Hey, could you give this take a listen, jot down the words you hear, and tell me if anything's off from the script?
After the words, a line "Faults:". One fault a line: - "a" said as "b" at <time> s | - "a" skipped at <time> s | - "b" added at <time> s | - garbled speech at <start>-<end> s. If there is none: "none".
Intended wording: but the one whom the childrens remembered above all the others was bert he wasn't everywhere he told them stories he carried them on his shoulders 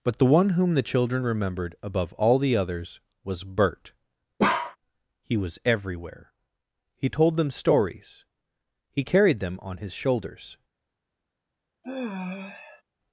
but the one whom the children remembered above all the others was bert he was everywhere he told them stories he carried them on his shoulders
Faults:
- "childrens" said as "children" at 0.8 s
- "wasn't" said as "was" at 5.4 s